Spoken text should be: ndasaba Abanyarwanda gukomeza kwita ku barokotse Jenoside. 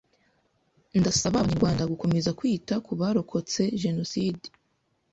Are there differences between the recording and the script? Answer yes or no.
no